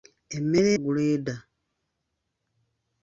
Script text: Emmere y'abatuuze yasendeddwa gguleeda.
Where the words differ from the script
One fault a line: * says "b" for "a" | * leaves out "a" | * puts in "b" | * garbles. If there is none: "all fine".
* leaves out "y'abatuuze yasendeddwa"